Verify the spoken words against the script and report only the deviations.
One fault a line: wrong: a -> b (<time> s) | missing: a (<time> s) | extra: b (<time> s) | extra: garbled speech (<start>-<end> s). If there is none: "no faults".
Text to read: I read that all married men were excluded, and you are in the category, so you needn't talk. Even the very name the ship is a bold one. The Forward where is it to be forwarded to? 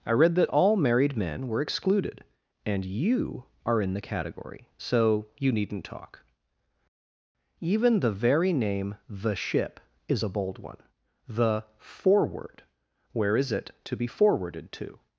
no faults